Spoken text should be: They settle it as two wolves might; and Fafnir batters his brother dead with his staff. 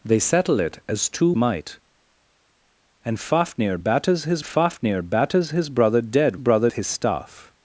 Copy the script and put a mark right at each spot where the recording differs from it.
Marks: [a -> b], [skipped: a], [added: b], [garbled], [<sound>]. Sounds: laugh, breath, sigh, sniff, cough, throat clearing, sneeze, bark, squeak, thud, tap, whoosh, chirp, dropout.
They settle it as two [skipped: wolves] might; and Fafnir batters his [added: Fafnir batters his] brother dead [with -> brother] his staff.